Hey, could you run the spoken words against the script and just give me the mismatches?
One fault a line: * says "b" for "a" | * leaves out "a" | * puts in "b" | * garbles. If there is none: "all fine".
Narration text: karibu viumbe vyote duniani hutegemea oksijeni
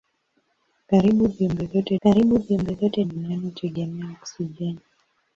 * puts in "karibu viumbe vyote"